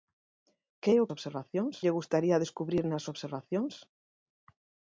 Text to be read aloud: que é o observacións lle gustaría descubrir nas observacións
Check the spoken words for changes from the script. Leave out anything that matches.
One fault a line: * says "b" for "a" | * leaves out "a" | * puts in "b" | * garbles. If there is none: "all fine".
all fine